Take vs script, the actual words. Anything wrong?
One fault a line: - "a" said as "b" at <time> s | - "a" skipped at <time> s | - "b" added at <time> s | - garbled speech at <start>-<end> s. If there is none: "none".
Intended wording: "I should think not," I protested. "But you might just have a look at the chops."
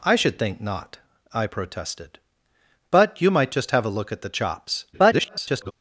- garbled speech at 4.9-5.7 s